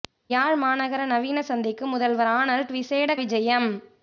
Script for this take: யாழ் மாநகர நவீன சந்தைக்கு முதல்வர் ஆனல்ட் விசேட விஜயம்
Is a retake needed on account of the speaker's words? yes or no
no